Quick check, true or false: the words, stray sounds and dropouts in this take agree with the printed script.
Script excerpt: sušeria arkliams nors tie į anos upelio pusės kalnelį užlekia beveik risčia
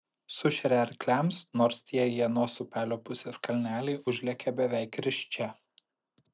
true